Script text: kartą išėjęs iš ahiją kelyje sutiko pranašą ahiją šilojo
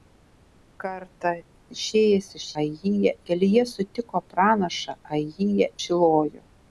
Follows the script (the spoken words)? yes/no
yes